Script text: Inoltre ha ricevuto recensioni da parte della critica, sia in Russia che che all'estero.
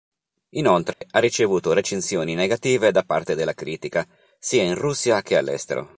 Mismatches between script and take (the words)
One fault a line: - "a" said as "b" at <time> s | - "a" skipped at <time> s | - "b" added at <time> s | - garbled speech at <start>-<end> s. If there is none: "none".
- "negative" added at 2.3 s
- "che" skipped at 5.4 s